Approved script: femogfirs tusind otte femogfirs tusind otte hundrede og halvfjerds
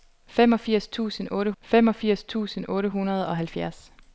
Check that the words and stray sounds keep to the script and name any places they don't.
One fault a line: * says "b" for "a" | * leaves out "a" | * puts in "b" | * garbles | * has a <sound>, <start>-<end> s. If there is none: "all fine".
all fine